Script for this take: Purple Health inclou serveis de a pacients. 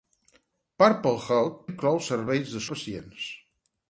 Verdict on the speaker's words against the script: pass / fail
pass